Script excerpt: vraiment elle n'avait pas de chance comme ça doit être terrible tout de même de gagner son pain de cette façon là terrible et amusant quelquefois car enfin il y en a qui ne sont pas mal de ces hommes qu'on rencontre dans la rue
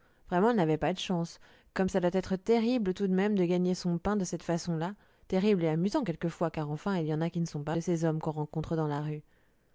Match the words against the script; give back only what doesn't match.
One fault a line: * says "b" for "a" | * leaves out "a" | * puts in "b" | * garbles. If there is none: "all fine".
* leaves out "mal"